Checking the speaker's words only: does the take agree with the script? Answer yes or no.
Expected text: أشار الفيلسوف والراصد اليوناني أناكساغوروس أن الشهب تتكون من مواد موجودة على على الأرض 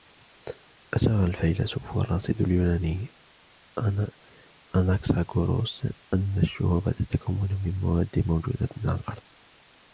no